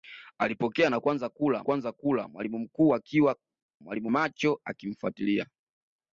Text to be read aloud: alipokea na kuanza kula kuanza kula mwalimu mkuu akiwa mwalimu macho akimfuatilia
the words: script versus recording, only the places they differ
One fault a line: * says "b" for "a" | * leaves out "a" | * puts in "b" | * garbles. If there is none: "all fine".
all fine